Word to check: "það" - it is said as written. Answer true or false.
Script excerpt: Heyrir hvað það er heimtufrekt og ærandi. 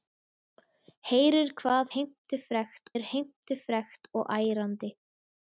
false